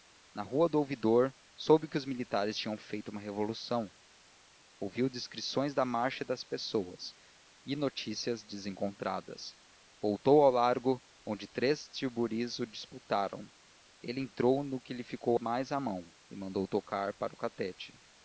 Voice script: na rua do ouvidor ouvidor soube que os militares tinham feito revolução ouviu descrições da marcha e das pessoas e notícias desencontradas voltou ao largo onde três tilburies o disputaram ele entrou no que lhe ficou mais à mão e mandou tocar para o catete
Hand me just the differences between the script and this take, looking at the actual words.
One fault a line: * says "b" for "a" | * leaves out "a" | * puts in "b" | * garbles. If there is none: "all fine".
* leaves out "ouvidor"
* puts in "uma"